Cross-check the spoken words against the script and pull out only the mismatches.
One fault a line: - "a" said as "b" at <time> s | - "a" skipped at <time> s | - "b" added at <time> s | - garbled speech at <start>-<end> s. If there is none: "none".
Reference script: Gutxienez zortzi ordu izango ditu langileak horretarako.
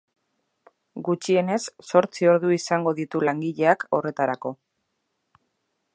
none